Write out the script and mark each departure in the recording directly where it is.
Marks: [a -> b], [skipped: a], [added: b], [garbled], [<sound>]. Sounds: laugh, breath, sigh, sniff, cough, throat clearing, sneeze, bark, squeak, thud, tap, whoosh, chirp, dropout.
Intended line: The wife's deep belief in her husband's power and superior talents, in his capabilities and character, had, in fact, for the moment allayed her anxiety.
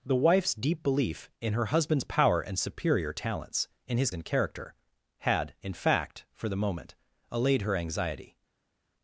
The wife's deep belief in her husband's power and superior talents, in his [skipped: capabilities] and character, had, in fact, for the moment allayed her anxiety.